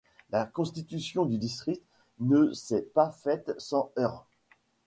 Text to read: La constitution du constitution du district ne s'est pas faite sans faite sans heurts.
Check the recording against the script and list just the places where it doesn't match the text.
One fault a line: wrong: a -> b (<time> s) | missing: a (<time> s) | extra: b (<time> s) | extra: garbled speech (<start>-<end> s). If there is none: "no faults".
missing: constitution du (1.4 s)
missing: faite sans (3.9 s)